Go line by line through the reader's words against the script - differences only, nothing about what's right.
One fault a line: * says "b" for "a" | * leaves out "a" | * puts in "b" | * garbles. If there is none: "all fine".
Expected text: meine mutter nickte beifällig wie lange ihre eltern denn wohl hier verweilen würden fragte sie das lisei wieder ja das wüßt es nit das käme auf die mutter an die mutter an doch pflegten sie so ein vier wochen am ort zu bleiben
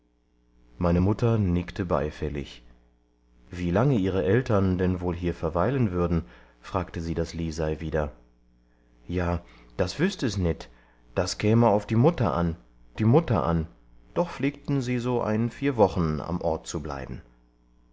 all fine